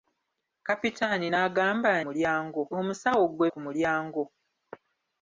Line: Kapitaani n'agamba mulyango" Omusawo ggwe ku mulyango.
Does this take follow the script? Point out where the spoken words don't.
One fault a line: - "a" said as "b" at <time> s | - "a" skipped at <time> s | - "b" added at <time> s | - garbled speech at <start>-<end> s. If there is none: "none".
none